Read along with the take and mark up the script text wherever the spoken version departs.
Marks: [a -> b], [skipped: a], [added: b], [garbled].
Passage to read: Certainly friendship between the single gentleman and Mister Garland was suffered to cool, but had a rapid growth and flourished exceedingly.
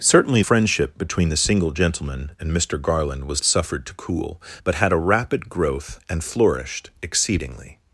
Certainly friendship between the single gentleman and Mister Garland was suffered to cool, but had a rapid growth and flourished exceedingly.